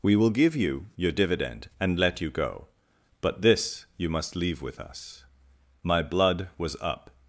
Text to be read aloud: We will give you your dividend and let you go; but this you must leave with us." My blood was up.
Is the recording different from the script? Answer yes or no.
no